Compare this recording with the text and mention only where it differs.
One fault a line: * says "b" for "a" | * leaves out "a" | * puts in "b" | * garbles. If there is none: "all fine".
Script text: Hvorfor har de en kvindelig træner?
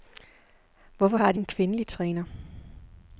all fine